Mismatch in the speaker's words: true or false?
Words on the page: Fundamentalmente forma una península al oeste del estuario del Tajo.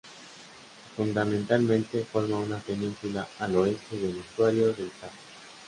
false